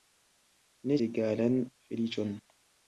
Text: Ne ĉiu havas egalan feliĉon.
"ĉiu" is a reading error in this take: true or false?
true